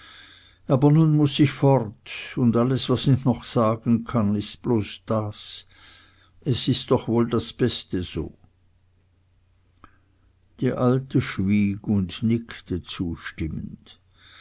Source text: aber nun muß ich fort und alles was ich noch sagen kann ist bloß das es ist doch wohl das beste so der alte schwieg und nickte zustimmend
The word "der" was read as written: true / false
false